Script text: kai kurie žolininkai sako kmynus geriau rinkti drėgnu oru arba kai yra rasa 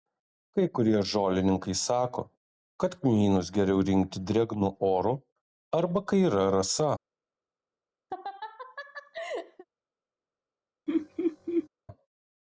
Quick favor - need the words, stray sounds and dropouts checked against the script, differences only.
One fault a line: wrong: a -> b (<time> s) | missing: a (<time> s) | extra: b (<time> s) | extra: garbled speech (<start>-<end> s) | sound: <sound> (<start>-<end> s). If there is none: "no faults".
extra: kad (2.8 s)
sound: laugh (8.1-9.6 s)
sound: laugh (10.9-11.7 s)